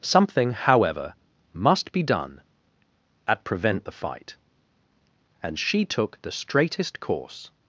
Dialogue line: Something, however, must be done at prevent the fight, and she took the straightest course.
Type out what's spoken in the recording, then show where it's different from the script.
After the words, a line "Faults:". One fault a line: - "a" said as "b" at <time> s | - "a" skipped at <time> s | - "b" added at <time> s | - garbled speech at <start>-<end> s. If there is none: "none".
Something, however, must be done at prevent the fight, and she took the straightest course.
Faults:
none